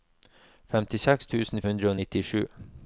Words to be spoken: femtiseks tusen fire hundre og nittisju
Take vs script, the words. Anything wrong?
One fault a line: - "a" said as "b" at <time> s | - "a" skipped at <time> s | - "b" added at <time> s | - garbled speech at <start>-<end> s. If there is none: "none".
- "fire" skipped at 1.6 s